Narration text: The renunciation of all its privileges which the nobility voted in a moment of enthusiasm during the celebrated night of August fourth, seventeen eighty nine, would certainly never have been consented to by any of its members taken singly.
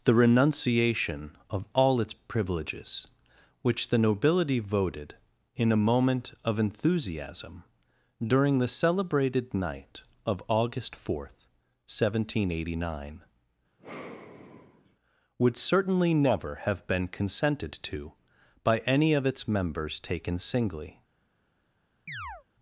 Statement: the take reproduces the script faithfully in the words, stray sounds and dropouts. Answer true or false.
false